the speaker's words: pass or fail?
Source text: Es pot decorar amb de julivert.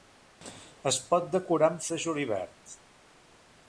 pass